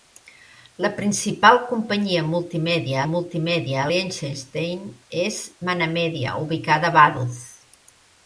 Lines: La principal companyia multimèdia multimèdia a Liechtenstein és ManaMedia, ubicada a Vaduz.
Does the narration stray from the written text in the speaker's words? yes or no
no